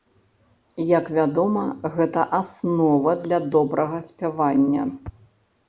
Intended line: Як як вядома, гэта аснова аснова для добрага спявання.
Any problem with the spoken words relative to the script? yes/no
yes